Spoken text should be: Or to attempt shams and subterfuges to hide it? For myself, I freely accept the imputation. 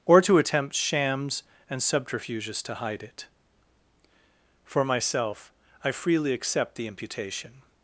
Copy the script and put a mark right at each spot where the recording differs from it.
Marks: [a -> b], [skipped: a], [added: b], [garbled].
Or to attempt shams and subterfuges to hide it? For myself, I freely accept the imputation.